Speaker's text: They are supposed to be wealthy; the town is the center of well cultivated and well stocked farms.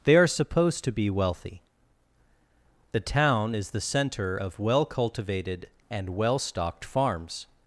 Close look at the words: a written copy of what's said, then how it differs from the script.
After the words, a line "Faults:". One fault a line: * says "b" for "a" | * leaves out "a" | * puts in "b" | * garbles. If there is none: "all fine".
They are supposed to be wealthy; the town is the center of well cultivated and well stocked farms.
Faults:
all fine